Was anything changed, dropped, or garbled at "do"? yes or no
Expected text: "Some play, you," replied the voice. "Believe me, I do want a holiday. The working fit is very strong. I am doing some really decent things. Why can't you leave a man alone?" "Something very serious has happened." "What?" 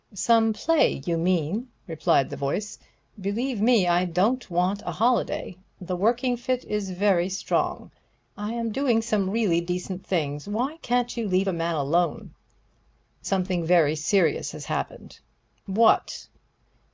yes